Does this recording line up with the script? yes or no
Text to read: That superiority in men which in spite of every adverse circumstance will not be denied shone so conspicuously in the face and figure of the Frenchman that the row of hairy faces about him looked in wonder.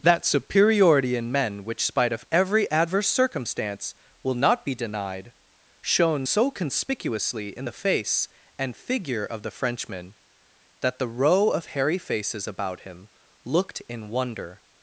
no